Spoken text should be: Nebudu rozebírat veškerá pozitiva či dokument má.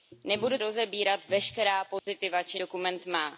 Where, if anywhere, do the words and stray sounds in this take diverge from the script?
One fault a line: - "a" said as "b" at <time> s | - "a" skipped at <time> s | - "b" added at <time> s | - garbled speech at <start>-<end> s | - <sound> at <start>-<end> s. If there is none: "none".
- dropout at 2.0-2.1 s